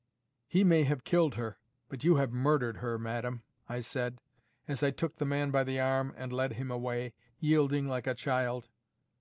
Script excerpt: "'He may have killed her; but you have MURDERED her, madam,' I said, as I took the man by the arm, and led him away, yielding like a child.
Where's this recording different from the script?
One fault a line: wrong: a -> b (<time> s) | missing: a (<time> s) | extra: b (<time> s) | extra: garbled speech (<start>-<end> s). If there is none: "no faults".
no faults